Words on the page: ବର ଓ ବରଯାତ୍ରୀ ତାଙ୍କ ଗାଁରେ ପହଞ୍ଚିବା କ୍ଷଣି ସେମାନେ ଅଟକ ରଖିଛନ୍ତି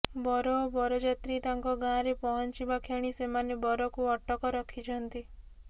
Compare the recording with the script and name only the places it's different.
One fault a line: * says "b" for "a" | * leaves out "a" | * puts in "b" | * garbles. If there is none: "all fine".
* puts in "ବରକୁ"